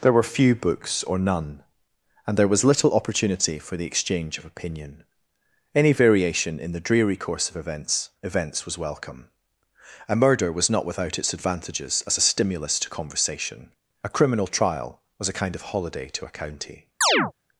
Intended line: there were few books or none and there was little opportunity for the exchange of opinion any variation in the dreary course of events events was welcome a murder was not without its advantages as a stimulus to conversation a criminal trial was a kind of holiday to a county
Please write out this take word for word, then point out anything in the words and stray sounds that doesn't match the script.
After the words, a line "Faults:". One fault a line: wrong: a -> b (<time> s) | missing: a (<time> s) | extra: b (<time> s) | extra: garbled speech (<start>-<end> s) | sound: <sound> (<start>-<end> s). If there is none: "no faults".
there were few books or none and there was little opportunity for the exchange of opinion any variation in the dreary course of events events was welcome a murder was not without its advantages as a stimulus to conversation a criminal trial was a kind of holiday to a county
Faults:
sound: chirp (17.0-17.3 s)